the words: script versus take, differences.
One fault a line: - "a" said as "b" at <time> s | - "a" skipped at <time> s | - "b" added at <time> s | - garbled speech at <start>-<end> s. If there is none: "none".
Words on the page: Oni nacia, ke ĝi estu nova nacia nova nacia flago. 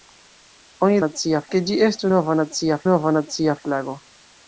none